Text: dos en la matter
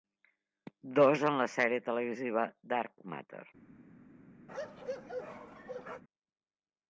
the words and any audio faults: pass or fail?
fail